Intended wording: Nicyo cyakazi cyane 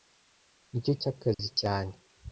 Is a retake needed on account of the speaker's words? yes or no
no